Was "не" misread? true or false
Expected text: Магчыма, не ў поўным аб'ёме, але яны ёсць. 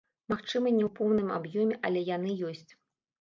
false